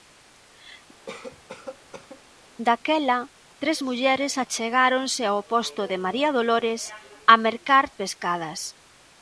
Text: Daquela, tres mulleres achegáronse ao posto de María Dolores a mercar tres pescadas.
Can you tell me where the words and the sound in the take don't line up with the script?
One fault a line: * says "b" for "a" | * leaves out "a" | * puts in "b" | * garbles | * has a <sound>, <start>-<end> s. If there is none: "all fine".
* has a cough, 1.1-2.2 s
* leaves out "tres"